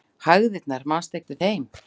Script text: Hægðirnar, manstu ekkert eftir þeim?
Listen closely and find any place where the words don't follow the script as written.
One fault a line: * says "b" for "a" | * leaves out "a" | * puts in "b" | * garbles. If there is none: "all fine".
* leaves out "ekkert"